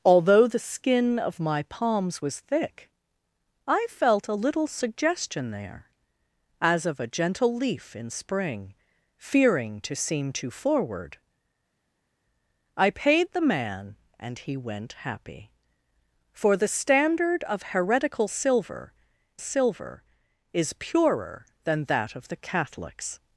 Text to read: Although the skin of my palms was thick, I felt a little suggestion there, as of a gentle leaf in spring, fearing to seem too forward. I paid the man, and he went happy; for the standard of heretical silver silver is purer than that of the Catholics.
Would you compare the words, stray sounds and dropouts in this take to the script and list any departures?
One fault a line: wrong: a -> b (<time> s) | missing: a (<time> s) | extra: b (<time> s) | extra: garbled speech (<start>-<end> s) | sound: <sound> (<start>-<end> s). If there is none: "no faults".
no faults